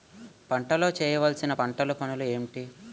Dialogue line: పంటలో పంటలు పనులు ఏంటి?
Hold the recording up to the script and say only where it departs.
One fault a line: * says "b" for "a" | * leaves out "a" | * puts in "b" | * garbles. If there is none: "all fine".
* puts in "చేయవలసిన"